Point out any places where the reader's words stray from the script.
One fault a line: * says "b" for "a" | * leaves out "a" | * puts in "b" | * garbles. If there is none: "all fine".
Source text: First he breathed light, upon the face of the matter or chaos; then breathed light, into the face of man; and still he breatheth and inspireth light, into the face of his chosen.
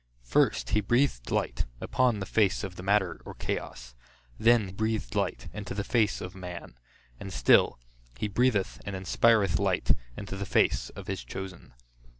all fine